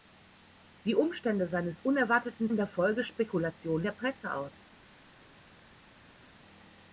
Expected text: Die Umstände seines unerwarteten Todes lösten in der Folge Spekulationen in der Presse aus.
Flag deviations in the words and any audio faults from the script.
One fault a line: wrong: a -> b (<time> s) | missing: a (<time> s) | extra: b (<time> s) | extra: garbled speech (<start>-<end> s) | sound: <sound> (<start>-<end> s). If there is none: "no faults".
missing: Todes lösten (2.5 s)
missing: in (3.9 s)